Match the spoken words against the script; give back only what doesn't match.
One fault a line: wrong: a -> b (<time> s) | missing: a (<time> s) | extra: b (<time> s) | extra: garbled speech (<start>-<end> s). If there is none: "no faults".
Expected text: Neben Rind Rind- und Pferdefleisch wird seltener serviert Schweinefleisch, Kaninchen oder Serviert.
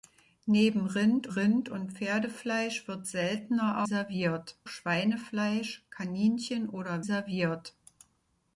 no faults